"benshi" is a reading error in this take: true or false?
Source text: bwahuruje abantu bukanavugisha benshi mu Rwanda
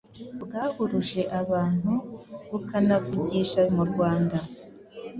true